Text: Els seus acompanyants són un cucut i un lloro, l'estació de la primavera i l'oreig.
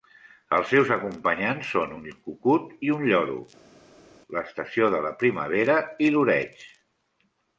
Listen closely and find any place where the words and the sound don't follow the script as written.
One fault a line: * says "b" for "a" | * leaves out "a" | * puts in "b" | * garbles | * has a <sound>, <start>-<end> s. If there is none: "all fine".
all fine